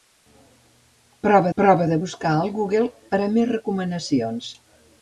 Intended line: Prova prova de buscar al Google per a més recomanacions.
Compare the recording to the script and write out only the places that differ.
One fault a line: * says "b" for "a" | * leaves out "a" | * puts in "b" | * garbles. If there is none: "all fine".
all fine